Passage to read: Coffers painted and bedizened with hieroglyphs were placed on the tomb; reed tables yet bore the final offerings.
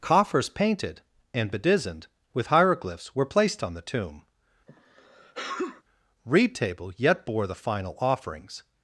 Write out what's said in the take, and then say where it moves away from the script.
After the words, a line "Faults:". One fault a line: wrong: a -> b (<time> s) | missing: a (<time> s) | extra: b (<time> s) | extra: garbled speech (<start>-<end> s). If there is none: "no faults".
Coffers painted and bedizened with hieroglyphs were placed on the tomb; reed table yet bore the final offerings.
Faults:
wrong: tables -> table (6.6 s)